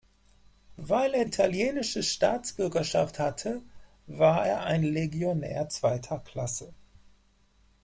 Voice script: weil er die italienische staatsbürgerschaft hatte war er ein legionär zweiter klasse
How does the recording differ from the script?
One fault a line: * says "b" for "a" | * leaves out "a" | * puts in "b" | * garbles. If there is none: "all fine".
* leaves out "die"